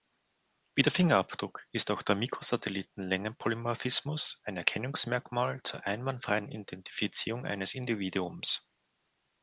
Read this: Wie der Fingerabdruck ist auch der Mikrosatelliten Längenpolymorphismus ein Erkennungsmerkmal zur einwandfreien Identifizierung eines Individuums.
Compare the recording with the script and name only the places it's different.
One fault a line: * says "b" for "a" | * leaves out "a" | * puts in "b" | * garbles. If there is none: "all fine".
all fine